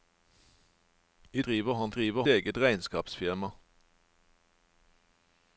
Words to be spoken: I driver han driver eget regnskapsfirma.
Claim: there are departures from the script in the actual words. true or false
false